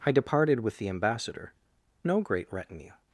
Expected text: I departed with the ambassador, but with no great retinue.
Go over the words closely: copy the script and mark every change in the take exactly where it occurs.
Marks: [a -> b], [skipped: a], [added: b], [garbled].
I departed with the ambassador, [skipped: but with] no great retinue.